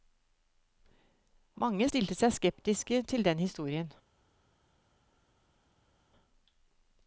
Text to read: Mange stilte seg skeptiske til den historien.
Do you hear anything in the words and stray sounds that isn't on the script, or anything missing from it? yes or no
no